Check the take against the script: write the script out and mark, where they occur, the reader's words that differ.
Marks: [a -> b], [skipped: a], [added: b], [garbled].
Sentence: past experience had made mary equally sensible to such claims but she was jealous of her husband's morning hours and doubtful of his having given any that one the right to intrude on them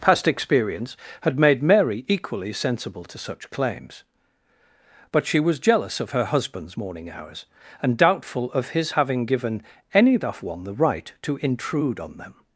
past experience had made mary equally sensible to such claims but she was jealous of her husband's morning hours and doubtful of his having given any that one the right to intrude on them